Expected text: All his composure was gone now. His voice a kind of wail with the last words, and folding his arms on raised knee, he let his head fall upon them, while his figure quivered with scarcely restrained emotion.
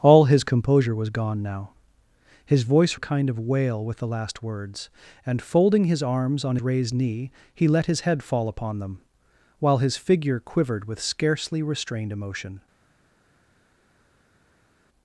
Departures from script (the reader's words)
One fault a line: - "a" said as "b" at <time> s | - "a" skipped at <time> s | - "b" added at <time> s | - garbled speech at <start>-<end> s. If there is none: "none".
none